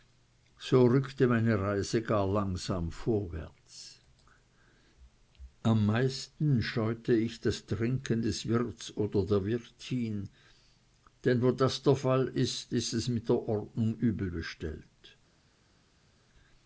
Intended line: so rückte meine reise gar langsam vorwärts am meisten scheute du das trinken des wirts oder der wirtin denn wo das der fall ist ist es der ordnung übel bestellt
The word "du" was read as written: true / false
false